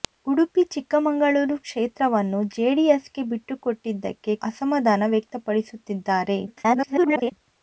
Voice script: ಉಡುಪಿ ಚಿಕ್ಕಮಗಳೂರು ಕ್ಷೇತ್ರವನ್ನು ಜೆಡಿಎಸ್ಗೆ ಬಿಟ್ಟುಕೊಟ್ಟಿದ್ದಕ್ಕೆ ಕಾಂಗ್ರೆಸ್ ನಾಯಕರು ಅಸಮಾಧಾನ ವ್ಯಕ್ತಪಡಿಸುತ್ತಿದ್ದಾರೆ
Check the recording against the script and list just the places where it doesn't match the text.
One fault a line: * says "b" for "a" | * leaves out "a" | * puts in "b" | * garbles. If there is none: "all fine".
* leaves out "ಕಾಂಗ್ರೆಸ್ ನಾಯಕರು"
* garbles